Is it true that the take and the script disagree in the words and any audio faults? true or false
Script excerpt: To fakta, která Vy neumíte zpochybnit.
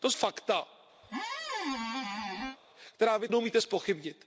true